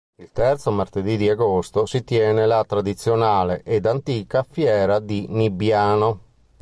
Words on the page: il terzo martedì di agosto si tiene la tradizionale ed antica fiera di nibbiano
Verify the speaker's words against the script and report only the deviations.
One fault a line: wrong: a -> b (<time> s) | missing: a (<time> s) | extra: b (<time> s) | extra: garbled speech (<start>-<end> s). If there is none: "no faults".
no faults